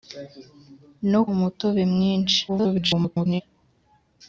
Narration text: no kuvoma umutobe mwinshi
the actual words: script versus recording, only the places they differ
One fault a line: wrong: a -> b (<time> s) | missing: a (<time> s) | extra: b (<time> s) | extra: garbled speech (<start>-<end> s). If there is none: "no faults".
missing: kuvoma (1.2 s)
extra: garbled speech (2.5-3.4 s)